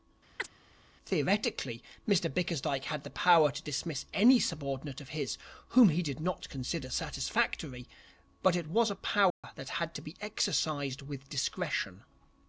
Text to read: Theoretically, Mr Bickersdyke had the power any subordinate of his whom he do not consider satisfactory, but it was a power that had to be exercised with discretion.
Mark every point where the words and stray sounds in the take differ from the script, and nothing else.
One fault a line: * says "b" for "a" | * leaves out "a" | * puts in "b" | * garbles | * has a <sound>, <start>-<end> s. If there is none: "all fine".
* has a chirp, 0.4-0.5 s
* puts in "to dismiss"
* says "did" for "do"
* has a dropout, 9.3-9.4 s